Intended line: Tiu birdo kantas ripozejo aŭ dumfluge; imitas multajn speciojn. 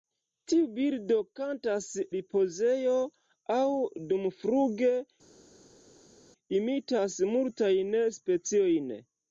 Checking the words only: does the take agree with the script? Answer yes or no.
yes